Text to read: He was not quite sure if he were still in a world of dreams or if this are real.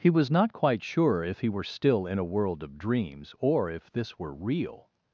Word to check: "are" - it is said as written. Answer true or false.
false